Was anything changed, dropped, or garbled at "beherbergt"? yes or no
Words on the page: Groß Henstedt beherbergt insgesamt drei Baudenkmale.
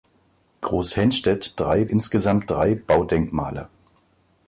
yes